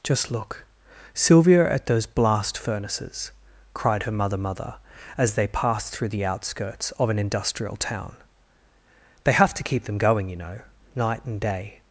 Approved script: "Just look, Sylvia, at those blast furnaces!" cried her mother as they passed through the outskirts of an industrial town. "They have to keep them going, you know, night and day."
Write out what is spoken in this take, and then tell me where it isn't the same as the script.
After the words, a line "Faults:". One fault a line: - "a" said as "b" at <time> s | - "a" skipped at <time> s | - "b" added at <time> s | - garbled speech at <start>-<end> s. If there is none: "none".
"Just look, Sylvia, at those blast furnaces!" cried her mother mother as they passed through the outskirts of an industrial town. "They have to keep them going, you know, night and day."
Faults:
- "mother" added at 4.4 s